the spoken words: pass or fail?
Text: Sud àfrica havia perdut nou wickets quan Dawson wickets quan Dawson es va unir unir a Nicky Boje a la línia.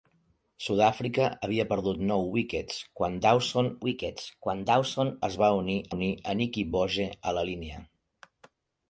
pass